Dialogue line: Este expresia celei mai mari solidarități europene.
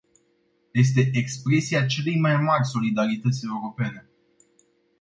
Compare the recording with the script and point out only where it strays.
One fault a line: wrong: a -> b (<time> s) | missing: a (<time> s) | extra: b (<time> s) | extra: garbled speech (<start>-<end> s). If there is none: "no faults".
no faults